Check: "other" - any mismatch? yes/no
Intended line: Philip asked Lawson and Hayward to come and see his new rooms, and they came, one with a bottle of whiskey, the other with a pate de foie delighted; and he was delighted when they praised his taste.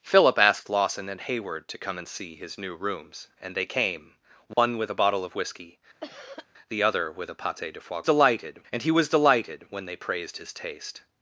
no